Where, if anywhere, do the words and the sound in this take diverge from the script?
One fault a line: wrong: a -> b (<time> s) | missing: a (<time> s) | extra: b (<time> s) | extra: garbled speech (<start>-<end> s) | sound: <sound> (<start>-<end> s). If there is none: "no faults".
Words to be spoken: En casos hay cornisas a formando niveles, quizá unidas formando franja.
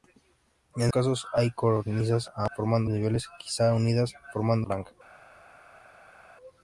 no faults